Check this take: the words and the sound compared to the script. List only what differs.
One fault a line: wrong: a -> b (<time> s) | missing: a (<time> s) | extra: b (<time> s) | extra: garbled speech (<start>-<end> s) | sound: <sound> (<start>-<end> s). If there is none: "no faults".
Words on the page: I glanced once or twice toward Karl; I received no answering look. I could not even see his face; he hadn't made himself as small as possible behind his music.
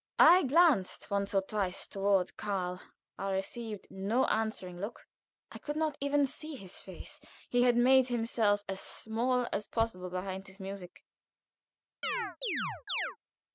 wrong: hadn't -> had (7.6 s)
sound: chirp (12.0-13.2 s)